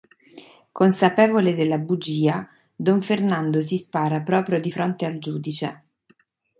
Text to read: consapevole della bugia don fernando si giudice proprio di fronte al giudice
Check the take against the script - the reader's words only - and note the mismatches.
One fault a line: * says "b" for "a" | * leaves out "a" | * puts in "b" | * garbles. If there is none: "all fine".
* says "spara" for "giudice"